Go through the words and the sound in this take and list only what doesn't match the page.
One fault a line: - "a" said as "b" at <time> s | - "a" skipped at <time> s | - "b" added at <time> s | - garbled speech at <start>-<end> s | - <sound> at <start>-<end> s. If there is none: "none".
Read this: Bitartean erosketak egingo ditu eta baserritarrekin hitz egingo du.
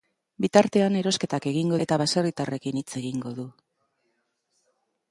- "ditu" skipped at 1.8 s